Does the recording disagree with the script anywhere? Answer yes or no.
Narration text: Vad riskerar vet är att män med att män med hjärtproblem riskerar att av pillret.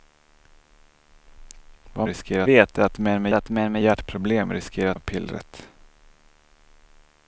no